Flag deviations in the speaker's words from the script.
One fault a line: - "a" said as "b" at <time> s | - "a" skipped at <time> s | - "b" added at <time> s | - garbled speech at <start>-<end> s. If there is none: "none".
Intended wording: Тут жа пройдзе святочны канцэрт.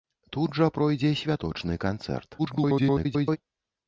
- garbled speech at 2.4-3.4 s